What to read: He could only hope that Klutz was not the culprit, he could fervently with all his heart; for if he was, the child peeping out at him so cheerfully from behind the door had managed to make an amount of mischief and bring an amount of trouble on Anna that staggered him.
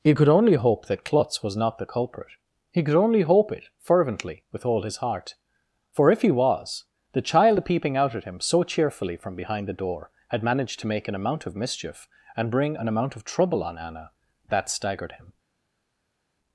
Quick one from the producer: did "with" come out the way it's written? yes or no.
yes